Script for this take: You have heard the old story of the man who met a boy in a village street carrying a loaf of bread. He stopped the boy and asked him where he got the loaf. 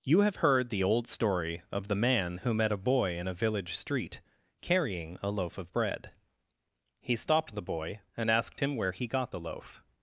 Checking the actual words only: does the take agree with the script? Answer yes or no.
yes